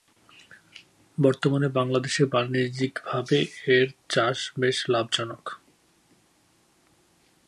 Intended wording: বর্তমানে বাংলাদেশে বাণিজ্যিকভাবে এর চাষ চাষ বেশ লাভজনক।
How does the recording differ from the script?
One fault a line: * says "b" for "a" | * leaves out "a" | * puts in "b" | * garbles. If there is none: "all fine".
* leaves out "চাষ"